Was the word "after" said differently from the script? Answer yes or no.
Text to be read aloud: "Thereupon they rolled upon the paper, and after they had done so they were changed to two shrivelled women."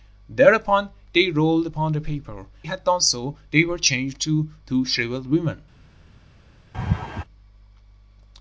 yes